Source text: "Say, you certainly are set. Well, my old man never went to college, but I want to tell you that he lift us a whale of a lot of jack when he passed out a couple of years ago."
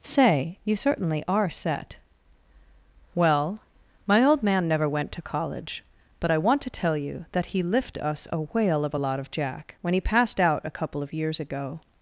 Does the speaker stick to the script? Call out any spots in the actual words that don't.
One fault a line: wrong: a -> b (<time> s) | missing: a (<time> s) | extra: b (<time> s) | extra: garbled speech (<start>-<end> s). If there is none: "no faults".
no faults